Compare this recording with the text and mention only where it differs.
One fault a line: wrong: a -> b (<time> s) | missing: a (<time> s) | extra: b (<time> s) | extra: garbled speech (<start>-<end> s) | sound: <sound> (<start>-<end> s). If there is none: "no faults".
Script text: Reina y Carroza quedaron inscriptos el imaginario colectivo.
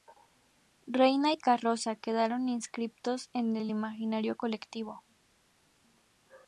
extra: en (3.3 s)